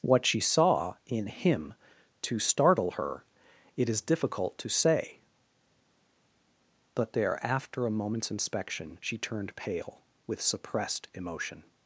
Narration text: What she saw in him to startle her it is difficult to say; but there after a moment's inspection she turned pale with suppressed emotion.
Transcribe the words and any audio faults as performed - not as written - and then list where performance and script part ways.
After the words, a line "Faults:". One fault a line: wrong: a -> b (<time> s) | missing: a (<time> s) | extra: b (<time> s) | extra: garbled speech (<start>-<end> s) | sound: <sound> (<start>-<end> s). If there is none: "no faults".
What she saw in him to startle her it is difficult to say; but there after a moment's inspection she turned pale with suppressed emotion.
Faults:
no faults